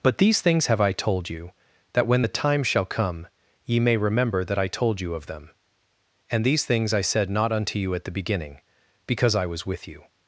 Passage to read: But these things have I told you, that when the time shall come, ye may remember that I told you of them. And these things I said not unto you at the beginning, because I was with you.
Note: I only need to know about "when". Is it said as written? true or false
true